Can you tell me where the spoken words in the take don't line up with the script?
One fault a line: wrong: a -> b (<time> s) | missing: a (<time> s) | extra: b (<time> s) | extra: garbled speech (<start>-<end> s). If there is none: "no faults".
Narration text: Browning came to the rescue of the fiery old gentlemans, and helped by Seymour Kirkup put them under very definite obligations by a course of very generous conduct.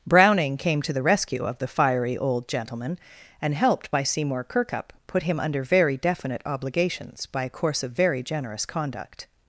wrong: gentlemans -> gentleman (2.5 s)
wrong: them -> him (5.2 s)